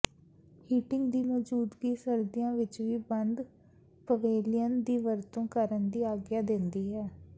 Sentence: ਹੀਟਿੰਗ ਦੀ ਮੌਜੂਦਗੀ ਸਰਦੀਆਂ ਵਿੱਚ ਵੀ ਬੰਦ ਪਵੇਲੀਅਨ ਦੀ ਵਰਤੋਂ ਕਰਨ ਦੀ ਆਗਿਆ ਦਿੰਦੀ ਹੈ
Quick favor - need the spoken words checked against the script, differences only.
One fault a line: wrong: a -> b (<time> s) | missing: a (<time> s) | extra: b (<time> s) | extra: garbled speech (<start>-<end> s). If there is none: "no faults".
no faults